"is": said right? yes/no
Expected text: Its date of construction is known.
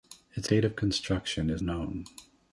yes